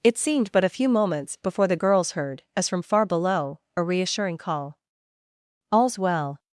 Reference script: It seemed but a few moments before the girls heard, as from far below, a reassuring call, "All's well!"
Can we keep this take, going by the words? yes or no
yes